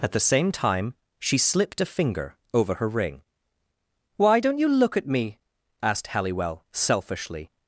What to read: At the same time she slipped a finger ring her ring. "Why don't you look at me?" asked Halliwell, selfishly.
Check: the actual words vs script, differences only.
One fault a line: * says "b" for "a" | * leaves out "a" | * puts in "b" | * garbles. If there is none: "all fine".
* says "over" for "ring"